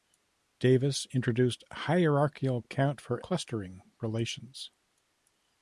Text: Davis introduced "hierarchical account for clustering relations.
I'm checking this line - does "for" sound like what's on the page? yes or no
yes